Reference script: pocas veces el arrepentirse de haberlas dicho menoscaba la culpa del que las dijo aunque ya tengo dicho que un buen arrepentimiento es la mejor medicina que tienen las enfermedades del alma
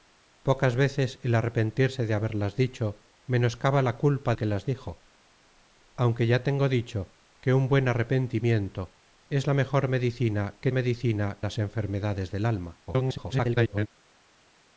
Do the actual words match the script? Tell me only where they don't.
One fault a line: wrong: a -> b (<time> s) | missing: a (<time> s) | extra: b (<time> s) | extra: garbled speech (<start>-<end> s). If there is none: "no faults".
missing: del (4.3 s)
wrong: tienen -> medicina (10.7 s)
extra: garbled speech (12.9-13.9 s)